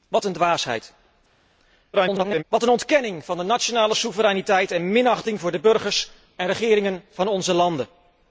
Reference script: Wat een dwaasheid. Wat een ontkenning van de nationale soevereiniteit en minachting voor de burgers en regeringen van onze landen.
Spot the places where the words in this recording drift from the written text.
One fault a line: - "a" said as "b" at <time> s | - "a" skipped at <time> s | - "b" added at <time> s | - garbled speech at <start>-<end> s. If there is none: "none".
- garbled speech at 1.9-2.4 s